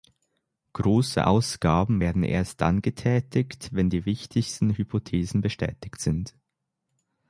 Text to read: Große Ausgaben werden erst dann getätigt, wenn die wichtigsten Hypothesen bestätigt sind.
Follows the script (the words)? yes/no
yes